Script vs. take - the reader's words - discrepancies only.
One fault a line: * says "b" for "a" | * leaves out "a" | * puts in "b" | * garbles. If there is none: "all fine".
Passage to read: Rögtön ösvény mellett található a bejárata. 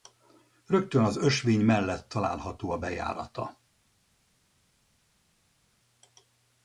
* puts in "az"